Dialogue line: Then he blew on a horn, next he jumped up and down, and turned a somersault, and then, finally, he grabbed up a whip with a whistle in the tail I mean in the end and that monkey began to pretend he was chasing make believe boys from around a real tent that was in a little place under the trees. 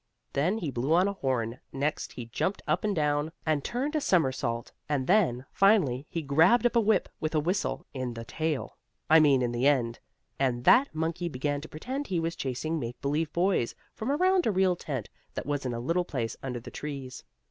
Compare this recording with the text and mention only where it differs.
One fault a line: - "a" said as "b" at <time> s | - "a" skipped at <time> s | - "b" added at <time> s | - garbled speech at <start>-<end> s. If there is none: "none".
none